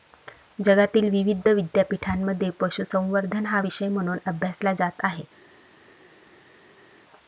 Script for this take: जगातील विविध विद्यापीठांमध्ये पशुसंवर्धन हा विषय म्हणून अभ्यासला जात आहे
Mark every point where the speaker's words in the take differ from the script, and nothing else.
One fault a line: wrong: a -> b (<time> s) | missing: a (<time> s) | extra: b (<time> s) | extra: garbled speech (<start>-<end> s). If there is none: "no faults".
no faults